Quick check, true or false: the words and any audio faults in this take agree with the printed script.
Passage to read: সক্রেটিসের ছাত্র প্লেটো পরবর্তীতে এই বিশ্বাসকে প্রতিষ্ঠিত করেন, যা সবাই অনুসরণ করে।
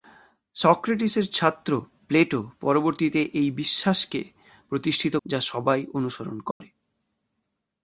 false